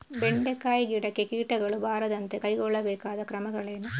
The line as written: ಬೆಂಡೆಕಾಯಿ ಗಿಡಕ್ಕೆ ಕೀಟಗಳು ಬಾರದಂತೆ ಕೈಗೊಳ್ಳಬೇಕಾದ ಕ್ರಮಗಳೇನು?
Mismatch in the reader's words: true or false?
false